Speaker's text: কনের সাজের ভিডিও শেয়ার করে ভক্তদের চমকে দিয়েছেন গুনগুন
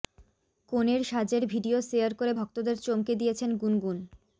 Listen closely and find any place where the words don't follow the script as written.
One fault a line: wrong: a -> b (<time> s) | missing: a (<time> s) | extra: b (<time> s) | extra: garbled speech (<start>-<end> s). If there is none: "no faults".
no faults